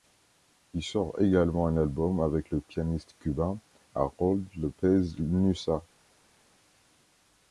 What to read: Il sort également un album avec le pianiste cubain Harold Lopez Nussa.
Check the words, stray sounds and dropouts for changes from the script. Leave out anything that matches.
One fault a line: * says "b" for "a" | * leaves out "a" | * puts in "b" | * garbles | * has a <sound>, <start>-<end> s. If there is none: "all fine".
all fine